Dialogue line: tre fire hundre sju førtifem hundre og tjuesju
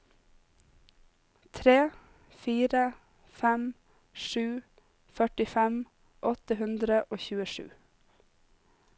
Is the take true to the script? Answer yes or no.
no